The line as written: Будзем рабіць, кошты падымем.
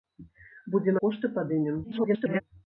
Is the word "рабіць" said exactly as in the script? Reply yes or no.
no